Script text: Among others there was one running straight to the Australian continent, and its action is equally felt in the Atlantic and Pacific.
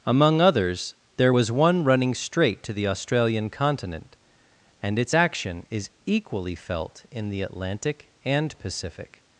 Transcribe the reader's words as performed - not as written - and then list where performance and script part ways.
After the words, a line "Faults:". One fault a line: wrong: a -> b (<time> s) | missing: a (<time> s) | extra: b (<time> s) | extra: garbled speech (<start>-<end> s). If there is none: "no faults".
Among others there was one running straight to the Australian continent, and its action is equally felt in the Atlantic and Pacific.
Faults:
no faults